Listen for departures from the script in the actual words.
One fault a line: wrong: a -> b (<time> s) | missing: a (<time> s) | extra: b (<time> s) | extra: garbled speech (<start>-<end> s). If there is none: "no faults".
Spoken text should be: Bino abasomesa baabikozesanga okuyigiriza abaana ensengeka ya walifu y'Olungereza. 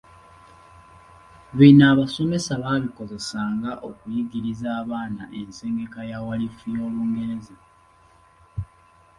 no faults